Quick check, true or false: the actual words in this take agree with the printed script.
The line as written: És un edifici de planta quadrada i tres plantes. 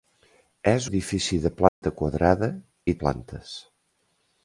false